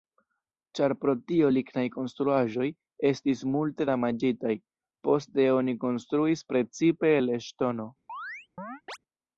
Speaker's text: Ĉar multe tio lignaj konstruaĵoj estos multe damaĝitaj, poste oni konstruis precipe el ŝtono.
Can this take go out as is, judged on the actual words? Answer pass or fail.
fail